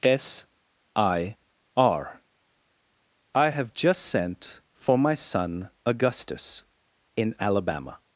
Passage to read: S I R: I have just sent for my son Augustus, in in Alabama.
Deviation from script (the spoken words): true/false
true